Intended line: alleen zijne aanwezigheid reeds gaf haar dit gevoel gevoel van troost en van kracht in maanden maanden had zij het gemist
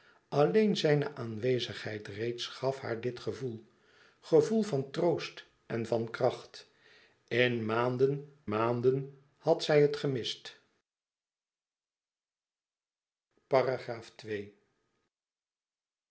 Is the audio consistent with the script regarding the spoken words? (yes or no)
yes